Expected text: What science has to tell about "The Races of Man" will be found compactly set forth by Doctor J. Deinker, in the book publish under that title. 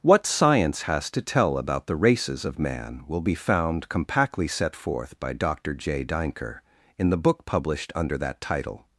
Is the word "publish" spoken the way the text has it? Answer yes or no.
no